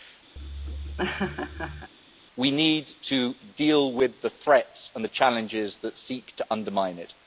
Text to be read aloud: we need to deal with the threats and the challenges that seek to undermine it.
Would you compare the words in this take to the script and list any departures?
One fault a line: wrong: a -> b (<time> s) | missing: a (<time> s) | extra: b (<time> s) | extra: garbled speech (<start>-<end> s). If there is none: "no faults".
no faults